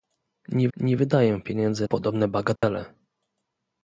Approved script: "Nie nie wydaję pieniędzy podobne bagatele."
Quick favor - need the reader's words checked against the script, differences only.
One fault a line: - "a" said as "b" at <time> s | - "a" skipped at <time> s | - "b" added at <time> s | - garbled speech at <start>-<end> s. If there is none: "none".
none